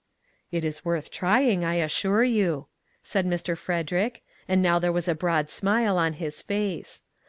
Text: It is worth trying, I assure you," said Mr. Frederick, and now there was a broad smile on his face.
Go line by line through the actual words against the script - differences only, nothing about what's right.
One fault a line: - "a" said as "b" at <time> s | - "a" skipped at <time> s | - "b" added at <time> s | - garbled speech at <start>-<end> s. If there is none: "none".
none